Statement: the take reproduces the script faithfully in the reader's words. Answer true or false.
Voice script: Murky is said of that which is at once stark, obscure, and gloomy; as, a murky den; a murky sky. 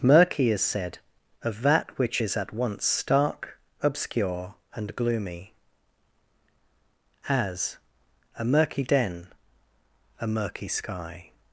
true